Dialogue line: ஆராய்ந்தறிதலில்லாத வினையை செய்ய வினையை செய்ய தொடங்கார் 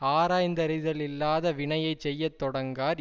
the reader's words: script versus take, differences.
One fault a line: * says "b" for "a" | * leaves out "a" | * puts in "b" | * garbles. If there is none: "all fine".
* leaves out "வினையை செய்ய"